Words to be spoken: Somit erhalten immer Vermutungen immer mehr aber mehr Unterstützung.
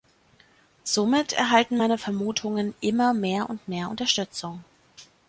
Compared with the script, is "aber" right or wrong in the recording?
wrong